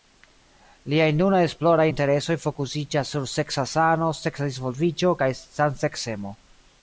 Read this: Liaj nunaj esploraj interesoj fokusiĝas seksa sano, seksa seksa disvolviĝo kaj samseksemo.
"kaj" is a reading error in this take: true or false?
false